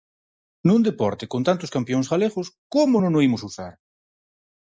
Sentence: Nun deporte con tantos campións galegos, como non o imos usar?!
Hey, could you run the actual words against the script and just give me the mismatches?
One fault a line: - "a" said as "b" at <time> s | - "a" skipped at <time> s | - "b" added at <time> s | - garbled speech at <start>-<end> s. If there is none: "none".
none